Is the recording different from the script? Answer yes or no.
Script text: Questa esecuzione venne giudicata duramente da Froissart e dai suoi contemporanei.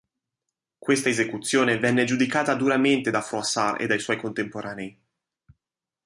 no